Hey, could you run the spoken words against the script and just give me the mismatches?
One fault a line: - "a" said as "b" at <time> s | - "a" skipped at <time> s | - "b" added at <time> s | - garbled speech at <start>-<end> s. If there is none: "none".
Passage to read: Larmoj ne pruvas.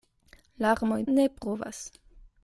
none